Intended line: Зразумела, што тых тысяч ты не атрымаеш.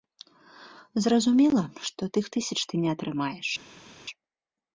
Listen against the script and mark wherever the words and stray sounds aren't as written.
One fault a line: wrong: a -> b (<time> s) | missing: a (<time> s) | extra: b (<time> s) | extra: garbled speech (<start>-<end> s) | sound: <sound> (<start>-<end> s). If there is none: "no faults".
no faults